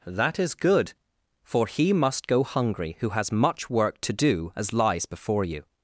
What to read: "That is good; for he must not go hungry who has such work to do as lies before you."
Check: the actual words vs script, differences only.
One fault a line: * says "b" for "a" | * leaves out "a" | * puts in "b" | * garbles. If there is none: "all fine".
* leaves out "not"
* says "much" for "such"